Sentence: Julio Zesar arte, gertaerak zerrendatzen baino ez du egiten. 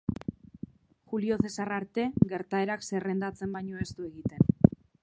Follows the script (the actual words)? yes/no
yes